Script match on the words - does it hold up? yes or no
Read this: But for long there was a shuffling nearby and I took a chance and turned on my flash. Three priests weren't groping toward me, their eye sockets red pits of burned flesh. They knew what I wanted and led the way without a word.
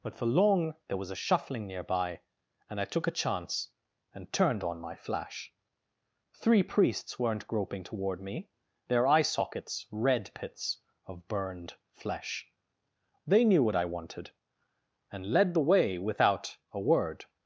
yes